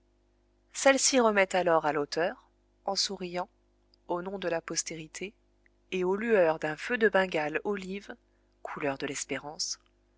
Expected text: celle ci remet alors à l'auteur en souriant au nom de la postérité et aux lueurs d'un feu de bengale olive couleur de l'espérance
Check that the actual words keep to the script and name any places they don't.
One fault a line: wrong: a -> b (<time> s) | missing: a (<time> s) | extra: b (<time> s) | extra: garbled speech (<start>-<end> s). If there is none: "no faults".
no faults